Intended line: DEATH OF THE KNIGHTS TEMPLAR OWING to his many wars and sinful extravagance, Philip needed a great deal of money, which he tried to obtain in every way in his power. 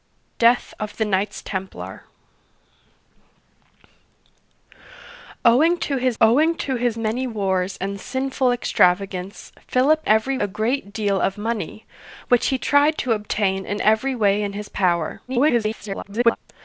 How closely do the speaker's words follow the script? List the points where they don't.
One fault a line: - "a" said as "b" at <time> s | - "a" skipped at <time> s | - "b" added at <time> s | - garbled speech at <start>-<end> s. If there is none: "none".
- "OWING to his" added at 6.2 s
- "needed" said as "every" at 10.0 s
- garbled speech at 15.3-16.4 s